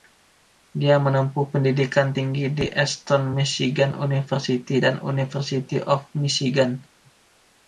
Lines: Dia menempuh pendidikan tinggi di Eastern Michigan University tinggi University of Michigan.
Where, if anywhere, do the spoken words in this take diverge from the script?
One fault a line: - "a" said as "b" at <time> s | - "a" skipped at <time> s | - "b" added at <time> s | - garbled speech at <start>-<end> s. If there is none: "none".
- "tinggi" said as "dan" at 4.7 s